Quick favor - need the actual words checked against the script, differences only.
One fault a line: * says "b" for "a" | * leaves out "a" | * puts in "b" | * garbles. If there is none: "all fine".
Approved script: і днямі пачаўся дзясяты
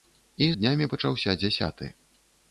all fine